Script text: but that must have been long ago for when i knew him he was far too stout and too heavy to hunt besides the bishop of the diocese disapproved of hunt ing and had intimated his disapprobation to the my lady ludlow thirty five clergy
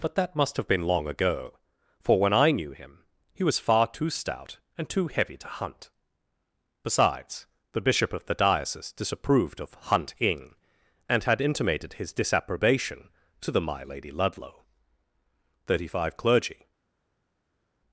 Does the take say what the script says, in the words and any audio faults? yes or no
yes